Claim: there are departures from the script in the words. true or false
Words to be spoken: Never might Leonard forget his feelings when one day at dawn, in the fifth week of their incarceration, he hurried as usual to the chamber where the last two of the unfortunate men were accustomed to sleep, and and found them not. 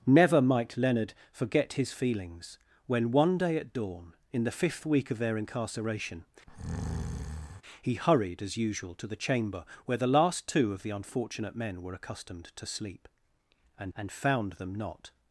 false